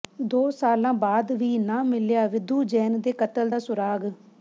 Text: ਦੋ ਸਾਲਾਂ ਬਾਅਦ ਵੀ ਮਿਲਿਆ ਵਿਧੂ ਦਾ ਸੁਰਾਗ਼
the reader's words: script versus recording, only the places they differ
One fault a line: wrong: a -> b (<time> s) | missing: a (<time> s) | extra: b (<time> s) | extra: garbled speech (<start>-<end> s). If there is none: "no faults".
extra: ਨਾ (1.6 s)
extra: ਜੈਨ ਦੇ ਕਤਲ (2.6 s)